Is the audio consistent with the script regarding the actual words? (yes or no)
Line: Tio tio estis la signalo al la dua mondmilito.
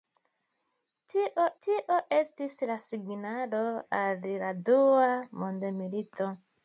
yes